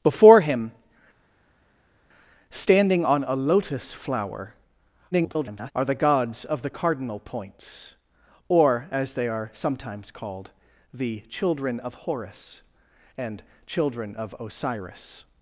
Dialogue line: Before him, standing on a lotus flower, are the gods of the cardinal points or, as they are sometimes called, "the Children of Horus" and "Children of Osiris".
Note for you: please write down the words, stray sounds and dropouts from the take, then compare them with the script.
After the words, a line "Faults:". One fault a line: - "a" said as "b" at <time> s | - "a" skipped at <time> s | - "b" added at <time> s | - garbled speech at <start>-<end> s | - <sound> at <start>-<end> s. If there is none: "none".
Before him, standing on a lotus flower, [garbled] are the gods of the cardinal points or, as they are sometimes called, "the Children of Horus" and "Children of Osiris".
Faults:
- garbled speech at 5.1-5.7 s